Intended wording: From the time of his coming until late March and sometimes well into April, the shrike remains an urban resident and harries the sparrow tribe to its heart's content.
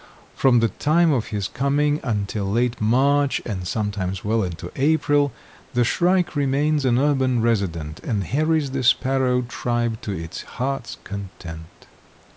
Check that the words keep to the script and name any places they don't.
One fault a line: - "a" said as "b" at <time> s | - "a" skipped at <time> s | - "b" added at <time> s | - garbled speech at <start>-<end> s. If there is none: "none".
none